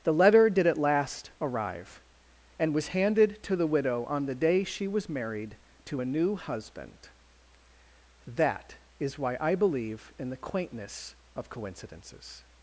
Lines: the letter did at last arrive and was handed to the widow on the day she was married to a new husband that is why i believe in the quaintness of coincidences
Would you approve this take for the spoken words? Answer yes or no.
yes